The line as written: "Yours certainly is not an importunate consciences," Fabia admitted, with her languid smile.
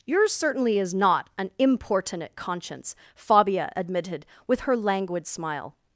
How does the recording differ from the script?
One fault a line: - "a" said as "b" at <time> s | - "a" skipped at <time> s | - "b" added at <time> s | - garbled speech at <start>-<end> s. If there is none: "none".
- "consciences" said as "conscience" at 2.4 s